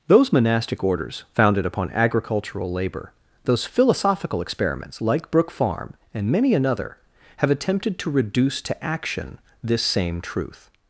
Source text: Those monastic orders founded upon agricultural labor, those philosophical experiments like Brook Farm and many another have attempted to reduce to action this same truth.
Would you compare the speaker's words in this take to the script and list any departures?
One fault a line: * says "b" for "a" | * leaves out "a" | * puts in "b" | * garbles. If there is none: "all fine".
all fine